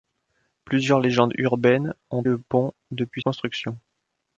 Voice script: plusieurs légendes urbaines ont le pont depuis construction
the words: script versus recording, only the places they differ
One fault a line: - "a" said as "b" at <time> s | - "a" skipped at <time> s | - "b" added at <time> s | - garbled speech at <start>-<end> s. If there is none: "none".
none